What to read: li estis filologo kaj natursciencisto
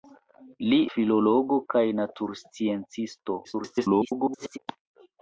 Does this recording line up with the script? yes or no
no